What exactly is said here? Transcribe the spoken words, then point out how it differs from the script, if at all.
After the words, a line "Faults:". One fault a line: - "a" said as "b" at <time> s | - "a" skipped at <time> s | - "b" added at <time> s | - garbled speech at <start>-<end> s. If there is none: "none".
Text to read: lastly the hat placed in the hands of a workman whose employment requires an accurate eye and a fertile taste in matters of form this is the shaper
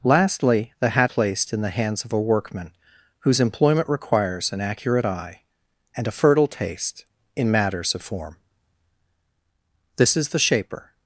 lastly the hat placed in the hands of a workman whose employment requires an accurate eye and a fertile taste in matters of form this is the shaper
Faults:
none